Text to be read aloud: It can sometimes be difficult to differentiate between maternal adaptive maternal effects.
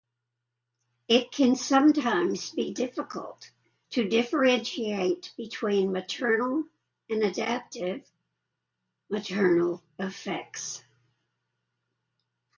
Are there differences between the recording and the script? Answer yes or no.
yes